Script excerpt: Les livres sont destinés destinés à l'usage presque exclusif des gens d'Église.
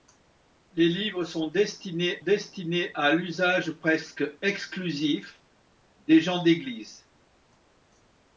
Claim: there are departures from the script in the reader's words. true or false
false